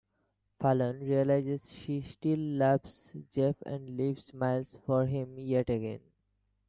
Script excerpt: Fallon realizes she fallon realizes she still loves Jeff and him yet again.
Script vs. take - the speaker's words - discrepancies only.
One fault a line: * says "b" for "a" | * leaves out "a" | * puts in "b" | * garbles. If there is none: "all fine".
* leaves out "fallon realizes she"
* puts in "leaves Miles for"